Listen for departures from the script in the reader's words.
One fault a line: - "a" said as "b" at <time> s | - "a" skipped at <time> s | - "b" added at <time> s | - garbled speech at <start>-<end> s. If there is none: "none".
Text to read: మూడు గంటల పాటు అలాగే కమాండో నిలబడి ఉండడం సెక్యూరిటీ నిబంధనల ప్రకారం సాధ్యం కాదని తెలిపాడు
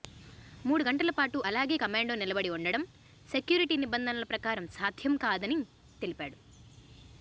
none